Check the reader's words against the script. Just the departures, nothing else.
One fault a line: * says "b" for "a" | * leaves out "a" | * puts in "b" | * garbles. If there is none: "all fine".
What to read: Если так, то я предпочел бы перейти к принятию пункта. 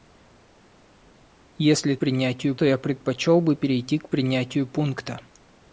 * says "принятию" for "так"